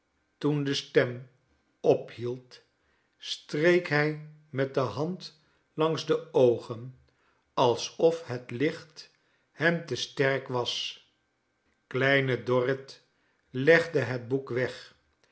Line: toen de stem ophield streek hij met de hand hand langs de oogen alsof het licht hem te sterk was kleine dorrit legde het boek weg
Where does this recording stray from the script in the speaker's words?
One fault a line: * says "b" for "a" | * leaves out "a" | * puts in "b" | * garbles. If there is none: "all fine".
* leaves out "hand"